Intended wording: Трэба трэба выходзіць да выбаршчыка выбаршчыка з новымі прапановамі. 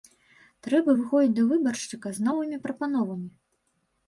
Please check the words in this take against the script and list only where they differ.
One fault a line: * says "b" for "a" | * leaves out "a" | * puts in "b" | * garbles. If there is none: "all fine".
* leaves out "трэба"
* leaves out "выбаршчыка"